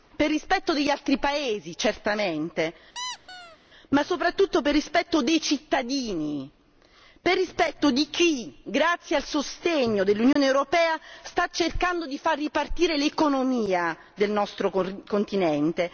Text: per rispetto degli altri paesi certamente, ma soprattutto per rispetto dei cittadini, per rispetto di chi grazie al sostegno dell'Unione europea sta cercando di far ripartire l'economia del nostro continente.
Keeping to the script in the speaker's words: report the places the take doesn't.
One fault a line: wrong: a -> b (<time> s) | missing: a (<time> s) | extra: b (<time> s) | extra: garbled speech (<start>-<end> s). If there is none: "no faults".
no faults